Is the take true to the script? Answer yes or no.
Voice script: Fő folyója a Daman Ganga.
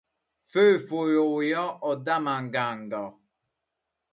yes